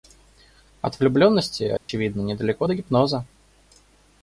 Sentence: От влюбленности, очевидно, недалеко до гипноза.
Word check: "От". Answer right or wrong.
right